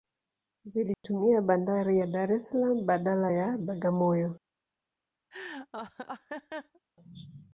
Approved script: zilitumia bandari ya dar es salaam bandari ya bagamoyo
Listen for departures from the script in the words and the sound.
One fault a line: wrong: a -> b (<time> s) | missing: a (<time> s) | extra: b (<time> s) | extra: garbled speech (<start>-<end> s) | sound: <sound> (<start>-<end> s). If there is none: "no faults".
sound: dropout (0.9-1.0 s)
wrong: bandari -> badala (2.9 s)
sound: laugh (5.3-6.8 s)